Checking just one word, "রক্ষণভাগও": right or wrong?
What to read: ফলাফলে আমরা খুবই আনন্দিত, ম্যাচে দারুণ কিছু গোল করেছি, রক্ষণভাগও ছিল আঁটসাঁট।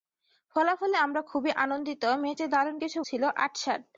wrong